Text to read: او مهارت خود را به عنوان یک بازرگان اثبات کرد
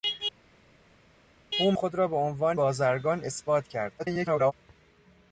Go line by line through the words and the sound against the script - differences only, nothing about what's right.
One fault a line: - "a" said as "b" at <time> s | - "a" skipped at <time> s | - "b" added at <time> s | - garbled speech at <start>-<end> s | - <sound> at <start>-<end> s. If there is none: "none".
- "مهارت" skipped at 1.7 s
- "یک" skipped at 2.6 s
- garbled speech at 4.0-4.5 s